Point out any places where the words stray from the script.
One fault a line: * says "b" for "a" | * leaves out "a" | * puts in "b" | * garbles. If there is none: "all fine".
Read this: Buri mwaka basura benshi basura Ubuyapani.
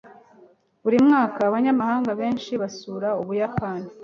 * says "abanyamahanga" for "basura"